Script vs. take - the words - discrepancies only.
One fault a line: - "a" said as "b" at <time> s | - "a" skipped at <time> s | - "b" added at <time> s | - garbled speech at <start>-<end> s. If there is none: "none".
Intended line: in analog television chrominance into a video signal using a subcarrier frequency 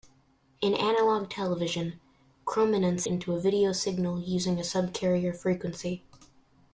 none